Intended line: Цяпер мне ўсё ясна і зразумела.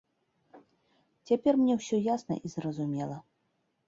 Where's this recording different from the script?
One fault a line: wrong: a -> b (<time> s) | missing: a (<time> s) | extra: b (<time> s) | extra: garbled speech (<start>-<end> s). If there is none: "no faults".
no faults